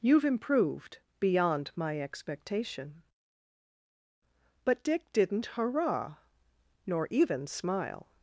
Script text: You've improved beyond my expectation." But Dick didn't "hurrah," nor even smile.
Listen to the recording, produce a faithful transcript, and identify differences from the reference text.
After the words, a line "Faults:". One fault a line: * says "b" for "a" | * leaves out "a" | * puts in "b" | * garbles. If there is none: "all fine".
You've improved beyond my expectation." But Dick didn't "hurrah," nor even smile.
Faults:
all fine